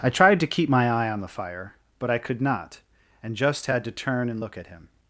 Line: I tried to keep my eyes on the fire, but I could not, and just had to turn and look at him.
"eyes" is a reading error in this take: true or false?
true